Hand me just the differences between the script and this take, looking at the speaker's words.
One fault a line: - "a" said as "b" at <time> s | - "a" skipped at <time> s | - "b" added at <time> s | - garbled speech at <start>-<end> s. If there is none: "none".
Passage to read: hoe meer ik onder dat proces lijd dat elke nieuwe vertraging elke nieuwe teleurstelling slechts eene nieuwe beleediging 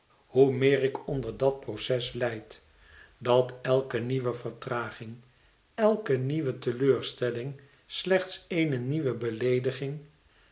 none